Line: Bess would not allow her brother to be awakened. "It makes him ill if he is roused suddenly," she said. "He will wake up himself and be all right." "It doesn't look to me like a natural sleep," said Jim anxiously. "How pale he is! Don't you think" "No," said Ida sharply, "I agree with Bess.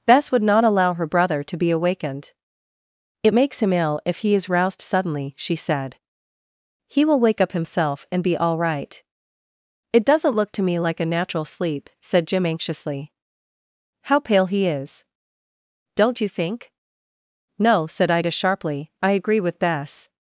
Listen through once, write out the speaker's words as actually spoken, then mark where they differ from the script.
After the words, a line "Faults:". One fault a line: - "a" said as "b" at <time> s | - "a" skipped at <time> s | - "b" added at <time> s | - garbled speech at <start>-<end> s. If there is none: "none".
Bess would not allow her brother to be awakened. "It makes him ill if he is roused suddenly," she said. "He will wake up himself and be all right." "It doesn't look to me like a natural sleep," said Jim anxiously. "How pale he is! Don't you think" "No," said Ida sharply, "I agree with Bess.
Faults:
none